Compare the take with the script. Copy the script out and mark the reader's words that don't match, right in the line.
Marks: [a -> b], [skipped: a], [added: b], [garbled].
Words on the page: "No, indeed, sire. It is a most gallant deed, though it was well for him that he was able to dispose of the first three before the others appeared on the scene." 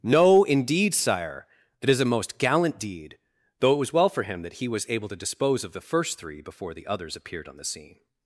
"No, indeed, sire. [It -> That] is a most gallant deed, though it was well for him that he was able to dispose of the first three before the others appeared on the scene."